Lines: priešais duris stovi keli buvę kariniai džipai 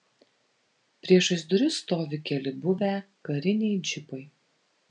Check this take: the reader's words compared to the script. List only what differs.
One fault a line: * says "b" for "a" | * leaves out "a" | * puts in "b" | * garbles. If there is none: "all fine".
all fine